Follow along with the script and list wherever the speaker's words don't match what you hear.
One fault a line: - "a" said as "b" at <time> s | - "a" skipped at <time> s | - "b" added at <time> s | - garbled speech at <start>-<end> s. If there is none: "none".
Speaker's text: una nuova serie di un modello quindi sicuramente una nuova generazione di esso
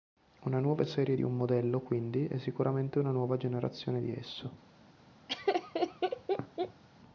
- "è" added at 2.3 s